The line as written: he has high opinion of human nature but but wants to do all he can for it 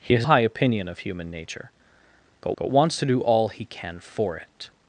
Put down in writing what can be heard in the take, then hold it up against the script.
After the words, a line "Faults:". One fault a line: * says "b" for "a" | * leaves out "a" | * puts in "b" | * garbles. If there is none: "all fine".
he has high opinion of human nature but but wants to do all he can for it
Faults:
all fine